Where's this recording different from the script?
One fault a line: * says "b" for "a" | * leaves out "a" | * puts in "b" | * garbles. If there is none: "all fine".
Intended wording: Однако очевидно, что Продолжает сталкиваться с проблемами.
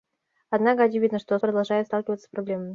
all fine